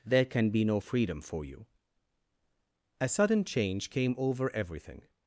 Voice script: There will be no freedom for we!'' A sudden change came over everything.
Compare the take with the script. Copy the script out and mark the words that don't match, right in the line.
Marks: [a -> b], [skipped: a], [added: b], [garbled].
There [will -> can] be no freedom for [we!'' -> you] A sudden change came over everything.